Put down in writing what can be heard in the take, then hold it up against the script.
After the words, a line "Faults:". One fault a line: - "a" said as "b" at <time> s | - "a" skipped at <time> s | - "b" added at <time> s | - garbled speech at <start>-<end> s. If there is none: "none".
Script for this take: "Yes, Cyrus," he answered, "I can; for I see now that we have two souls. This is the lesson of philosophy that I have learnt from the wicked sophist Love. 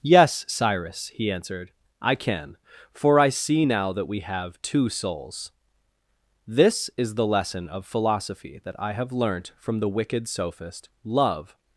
"Yes, Cyrus," he answered, "I can; for I see now that we have two souls. This is the lesson of philosophy that I have learnt from the wicked sophist Love.
Faults:
none